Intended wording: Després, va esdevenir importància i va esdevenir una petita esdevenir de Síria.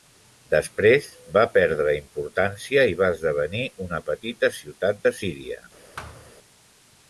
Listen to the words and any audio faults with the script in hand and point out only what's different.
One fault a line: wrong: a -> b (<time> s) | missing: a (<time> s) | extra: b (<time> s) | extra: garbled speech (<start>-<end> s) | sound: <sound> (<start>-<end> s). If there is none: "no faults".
wrong: esdevenir -> perdre (1.6 s)
wrong: esdevenir -> ciutat (4.6 s)
sound: thud (6.0-6.3 s)